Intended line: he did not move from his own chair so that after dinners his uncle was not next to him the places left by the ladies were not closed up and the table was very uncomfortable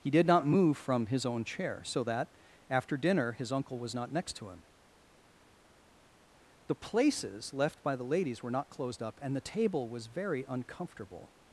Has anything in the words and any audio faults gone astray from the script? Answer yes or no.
yes